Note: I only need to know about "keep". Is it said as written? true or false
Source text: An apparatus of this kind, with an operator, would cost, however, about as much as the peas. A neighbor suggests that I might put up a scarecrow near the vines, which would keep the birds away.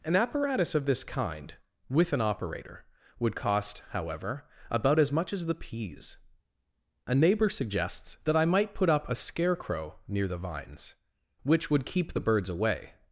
true